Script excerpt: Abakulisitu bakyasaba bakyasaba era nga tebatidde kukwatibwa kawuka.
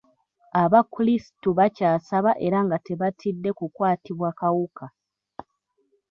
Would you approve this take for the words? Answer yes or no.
no